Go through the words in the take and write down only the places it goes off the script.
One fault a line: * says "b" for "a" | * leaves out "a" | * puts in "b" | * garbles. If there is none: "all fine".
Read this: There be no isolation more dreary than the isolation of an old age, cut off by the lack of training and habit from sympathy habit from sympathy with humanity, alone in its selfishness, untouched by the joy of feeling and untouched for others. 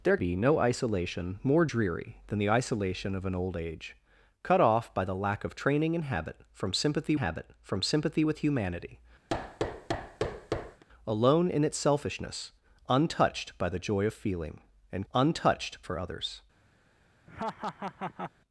all fine